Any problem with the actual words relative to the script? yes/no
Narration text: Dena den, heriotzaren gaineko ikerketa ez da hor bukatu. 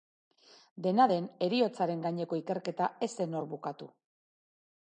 yes